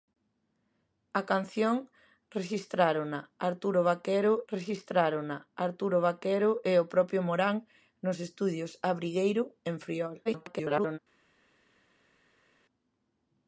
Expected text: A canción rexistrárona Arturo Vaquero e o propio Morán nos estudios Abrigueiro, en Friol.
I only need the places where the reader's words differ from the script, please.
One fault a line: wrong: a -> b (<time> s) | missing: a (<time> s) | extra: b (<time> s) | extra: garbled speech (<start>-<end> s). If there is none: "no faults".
extra: rexistrárona Arturo Vaquero (4.5 s)
extra: garbled speech (10.3-11.0 s)